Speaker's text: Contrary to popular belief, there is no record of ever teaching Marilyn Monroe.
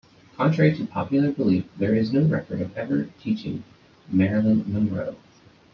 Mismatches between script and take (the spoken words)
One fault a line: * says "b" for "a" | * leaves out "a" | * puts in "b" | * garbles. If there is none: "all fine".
all fine